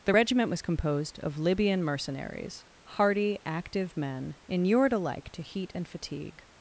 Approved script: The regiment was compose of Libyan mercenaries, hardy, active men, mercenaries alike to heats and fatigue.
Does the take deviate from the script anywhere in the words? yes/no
yes